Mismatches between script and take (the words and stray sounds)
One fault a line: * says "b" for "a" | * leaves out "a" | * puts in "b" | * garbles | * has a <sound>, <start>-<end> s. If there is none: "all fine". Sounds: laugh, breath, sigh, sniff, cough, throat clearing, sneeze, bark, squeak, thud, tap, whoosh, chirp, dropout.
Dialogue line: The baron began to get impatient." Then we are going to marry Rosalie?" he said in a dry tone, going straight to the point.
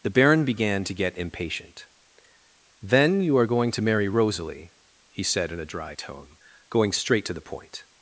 * says "you" for "we"